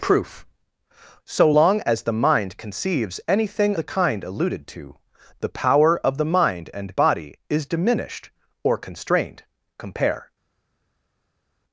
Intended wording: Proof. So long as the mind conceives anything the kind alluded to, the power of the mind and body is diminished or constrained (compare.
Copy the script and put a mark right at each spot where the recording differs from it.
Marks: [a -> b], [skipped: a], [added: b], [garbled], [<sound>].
Proof. So long as the mind conceives anything the kind alluded to, the power of the mind and body is diminished or constrained (compare.